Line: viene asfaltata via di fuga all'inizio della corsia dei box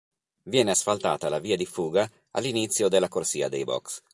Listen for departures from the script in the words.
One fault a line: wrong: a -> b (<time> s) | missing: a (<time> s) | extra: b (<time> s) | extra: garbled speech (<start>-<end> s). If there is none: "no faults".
extra: la (1.3 s)